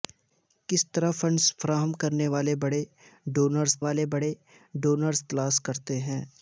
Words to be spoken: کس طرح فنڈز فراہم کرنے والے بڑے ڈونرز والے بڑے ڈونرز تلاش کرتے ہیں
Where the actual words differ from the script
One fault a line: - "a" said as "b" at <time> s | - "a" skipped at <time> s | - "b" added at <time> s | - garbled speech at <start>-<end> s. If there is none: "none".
none